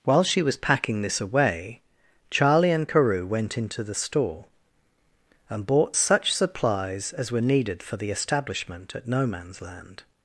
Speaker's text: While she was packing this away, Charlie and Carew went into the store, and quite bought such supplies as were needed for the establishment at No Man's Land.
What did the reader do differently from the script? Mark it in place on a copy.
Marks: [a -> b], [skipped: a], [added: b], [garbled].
While she was packing this away, Charlie and Carew went into the store, and [skipped: quite] bought such supplies as were needed for the establishment at No Man's Land.